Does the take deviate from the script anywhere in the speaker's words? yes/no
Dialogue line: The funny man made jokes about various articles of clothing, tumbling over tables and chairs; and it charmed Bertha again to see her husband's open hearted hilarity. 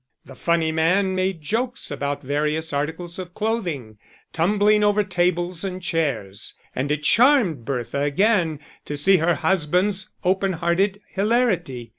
no